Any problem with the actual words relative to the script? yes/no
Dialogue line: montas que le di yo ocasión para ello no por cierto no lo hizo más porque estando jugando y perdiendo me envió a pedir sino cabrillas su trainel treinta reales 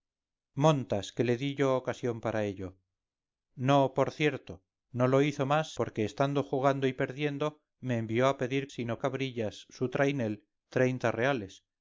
no